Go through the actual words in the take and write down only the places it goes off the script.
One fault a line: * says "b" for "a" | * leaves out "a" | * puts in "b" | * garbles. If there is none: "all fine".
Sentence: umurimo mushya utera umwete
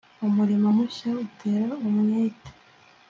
all fine